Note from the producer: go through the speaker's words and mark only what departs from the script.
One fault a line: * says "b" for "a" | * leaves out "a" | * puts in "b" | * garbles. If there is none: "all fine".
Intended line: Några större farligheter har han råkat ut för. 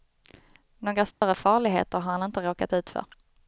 * puts in "inte"